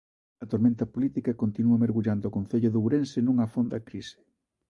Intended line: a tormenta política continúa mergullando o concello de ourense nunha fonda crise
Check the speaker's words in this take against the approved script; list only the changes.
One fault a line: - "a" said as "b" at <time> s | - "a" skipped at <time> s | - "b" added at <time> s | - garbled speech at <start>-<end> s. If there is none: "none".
none